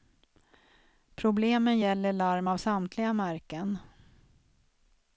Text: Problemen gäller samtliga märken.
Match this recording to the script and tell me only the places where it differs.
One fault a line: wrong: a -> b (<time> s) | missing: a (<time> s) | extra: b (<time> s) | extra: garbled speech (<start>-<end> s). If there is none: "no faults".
extra: larm av (2.1 s)